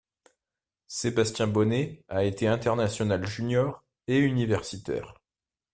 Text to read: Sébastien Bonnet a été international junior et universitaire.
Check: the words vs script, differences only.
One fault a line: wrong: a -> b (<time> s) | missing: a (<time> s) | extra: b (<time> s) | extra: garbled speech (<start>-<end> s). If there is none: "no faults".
no faults